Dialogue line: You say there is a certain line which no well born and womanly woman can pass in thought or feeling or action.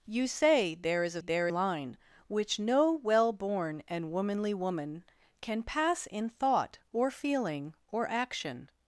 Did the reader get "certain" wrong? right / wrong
wrong